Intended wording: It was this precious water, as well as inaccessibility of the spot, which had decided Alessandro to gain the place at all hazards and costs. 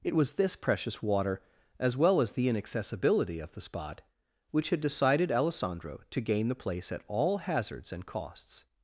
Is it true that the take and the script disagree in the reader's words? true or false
true